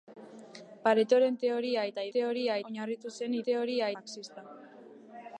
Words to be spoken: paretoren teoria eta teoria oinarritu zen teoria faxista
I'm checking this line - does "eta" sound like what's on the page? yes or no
yes